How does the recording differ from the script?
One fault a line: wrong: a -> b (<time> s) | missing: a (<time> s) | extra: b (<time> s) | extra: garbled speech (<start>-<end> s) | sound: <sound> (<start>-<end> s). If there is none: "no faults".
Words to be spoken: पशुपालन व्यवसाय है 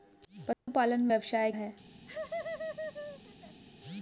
sound: dropout (0.5-0.7 s)
sound: laugh (2.1-3.6 s)